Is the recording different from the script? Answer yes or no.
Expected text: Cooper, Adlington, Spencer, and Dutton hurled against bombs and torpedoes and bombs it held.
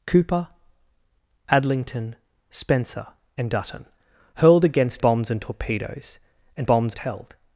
no